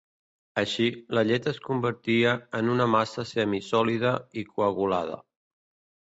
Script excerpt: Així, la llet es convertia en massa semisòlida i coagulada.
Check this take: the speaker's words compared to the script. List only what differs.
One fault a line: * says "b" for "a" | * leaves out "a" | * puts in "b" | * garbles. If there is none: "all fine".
* puts in "una"